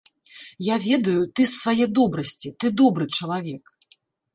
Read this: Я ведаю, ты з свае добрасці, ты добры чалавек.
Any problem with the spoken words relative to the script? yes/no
no